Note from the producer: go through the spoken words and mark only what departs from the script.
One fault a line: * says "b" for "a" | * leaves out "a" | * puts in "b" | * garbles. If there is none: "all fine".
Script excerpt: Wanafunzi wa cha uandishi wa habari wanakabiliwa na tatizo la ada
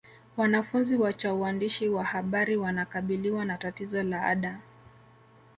all fine